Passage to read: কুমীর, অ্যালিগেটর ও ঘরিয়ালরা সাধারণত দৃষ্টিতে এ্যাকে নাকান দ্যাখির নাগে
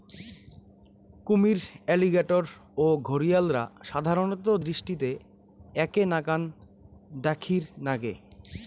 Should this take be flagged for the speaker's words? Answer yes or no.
no